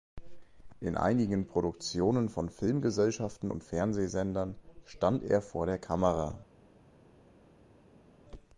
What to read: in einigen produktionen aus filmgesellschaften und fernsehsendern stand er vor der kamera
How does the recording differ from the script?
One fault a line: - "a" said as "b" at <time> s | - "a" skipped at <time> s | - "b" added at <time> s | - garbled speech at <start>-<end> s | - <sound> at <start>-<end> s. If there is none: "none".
- "aus" said as "von" at 2.3 s